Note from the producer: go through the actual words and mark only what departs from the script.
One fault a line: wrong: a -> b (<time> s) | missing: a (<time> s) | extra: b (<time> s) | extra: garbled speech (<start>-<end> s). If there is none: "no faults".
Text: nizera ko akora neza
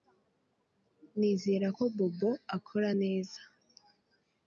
extra: bobo (2.0 s)